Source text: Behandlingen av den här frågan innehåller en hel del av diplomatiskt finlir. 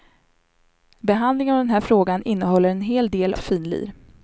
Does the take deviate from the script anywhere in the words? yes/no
yes